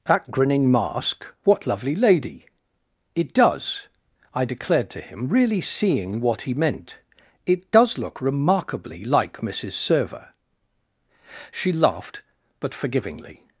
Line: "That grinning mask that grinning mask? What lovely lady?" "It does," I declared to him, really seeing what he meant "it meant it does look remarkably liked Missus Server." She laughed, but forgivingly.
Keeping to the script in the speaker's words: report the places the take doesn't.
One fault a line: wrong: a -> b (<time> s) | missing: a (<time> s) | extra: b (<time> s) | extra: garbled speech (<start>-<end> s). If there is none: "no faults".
missing: that grinning mask (1.3 s)
missing: meant it (7.7 s)
wrong: liked -> like (9.1 s)